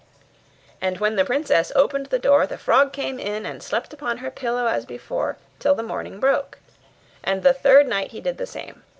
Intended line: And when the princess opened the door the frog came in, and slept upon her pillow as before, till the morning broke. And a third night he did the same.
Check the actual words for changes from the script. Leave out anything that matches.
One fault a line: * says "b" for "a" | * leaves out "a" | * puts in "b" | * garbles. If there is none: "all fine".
* says "the" for "a"